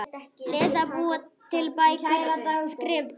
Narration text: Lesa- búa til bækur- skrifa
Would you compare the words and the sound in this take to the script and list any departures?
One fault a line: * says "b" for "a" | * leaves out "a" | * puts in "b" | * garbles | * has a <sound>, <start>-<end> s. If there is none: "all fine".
all fine